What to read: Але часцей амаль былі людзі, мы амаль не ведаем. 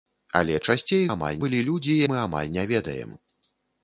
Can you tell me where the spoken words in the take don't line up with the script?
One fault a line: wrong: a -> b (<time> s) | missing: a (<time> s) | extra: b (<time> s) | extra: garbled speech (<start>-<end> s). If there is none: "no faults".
no faults